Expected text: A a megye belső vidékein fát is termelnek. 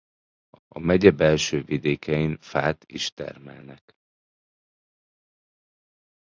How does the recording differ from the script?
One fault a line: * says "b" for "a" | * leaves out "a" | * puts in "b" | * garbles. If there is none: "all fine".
all fine